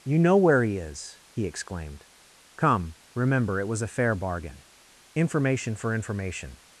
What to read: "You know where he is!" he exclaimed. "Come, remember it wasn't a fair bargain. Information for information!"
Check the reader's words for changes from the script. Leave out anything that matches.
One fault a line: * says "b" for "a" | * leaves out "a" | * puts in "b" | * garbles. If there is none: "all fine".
* says "was" for "wasn't"